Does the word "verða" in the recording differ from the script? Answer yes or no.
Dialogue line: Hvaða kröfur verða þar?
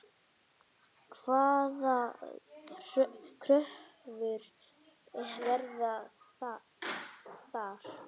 no